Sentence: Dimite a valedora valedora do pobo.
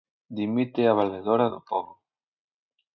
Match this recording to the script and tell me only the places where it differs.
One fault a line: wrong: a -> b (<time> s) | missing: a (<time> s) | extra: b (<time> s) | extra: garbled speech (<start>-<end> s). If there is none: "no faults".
missing: valedora (1.5 s)